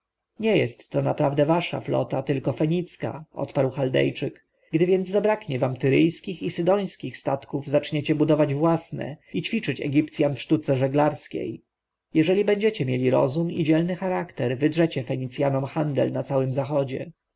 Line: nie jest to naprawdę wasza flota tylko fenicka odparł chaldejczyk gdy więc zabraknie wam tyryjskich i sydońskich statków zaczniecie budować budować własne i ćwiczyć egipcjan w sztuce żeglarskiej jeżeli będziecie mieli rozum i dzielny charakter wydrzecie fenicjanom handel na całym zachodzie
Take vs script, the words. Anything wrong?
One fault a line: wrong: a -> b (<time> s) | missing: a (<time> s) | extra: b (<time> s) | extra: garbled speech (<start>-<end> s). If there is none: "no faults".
missing: budować (8.5 s)